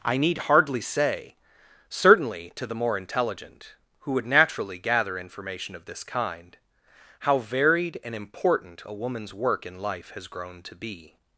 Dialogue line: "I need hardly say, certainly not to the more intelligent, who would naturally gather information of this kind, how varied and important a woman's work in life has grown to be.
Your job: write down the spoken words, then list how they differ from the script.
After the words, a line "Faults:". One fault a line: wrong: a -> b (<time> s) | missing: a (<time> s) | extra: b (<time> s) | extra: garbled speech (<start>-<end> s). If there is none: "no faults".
"I need hardly say, certainly to the more intelligent, who would naturally gather information of this kind, how varied and important a woman's work in life has grown to be.
Faults:
missing: not (2.5 s)